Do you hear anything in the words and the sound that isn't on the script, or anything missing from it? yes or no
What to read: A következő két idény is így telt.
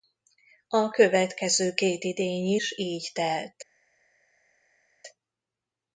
no